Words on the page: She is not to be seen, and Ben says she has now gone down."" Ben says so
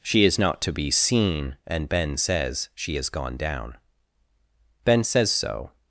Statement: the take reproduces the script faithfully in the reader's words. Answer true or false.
false